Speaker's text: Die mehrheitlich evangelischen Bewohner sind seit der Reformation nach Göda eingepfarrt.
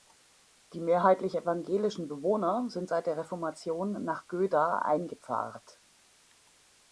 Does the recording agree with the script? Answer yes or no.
yes